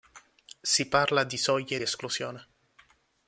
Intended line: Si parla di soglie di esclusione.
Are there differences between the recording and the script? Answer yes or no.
yes